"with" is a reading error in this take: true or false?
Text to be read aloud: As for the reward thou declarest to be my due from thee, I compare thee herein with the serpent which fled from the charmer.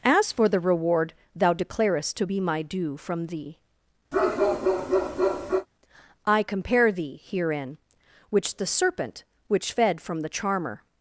true